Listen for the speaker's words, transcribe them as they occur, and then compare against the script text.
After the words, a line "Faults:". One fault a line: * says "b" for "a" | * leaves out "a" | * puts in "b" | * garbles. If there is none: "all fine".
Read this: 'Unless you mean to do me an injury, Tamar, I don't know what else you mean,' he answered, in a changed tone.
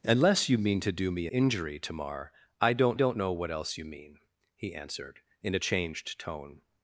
'Unless you mean to do me injury, Tamar, I don't don't know what else you mean,' he answered, in a changed tone.
Faults:
* leaves out "an"
* puts in "don't"